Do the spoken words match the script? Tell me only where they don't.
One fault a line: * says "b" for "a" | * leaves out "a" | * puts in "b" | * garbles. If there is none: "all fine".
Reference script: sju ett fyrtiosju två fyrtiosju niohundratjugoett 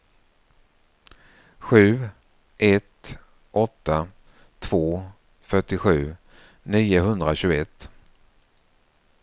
* says "åtta" for "fyrtiosju"